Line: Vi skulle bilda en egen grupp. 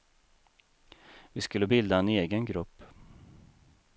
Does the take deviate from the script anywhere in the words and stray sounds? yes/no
no